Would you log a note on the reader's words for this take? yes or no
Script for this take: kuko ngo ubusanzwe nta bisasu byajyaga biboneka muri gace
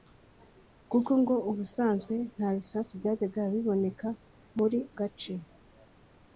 no